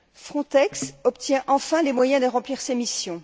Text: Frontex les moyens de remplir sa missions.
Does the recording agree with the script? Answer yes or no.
no